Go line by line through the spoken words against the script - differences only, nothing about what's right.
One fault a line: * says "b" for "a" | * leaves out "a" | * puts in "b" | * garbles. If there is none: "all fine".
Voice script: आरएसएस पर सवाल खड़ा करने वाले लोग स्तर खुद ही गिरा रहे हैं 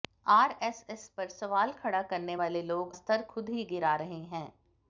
all fine